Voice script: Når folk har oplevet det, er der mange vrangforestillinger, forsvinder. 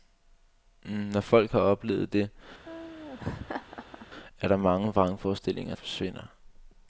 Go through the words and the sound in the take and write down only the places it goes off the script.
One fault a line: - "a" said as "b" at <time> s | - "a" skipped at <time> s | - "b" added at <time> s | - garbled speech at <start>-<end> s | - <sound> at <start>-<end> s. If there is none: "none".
- laugh at 2.6-4.1 s